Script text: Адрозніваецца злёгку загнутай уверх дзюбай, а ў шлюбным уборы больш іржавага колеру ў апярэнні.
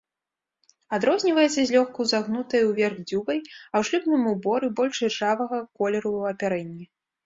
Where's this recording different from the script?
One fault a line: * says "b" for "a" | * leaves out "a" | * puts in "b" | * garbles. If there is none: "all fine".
all fine